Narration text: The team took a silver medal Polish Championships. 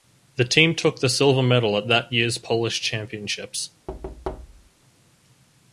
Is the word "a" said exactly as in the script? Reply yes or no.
no